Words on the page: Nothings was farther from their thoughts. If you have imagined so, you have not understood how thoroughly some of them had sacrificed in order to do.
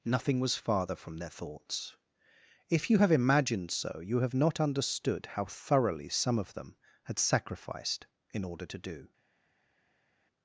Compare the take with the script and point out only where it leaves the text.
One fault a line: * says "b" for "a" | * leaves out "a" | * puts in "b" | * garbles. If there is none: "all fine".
* says "Nothing" for "Nothings"